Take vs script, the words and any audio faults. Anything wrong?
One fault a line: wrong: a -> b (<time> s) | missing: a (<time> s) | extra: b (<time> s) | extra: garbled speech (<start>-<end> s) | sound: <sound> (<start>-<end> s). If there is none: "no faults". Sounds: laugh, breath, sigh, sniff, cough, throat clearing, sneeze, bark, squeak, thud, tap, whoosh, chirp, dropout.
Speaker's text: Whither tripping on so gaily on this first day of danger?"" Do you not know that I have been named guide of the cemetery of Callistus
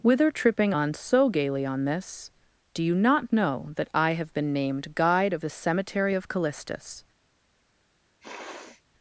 missing: first day of danger (2.3 s)
sound: sniff (8.2-8.8 s)